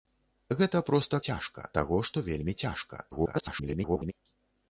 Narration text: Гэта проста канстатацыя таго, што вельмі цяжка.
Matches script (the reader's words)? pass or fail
fail